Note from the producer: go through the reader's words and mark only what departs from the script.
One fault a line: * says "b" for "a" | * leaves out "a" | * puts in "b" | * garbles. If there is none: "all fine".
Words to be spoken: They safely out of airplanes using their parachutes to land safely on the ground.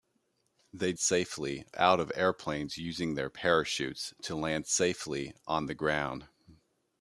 all fine